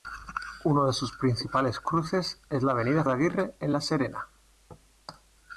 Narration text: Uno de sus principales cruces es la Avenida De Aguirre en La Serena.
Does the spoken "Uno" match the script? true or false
true